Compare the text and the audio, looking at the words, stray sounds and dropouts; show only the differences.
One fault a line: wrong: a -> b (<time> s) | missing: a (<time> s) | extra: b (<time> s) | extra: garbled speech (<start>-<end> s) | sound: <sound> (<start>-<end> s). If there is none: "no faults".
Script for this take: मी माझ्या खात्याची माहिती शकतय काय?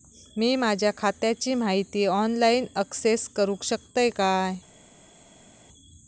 extra: ऑनलाईन अक्सेस करूक (2.0 s)